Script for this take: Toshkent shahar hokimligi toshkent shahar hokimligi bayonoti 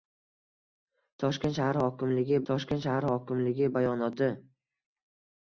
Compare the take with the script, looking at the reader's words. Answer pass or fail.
pass